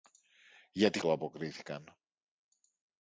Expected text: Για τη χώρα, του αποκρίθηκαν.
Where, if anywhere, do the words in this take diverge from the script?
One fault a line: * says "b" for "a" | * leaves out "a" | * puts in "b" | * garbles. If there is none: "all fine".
* leaves out "χώρα"